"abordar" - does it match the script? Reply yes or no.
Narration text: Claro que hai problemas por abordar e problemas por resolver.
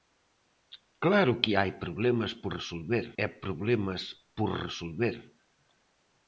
no